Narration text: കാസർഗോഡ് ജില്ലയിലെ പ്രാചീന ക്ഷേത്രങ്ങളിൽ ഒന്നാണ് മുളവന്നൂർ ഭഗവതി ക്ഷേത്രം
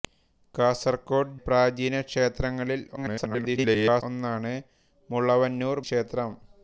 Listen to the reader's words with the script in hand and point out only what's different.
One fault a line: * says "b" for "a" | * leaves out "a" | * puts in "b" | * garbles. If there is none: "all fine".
* leaves out "ജില്ലയിലെ"
* garbles
* leaves out "ഭഗവതി"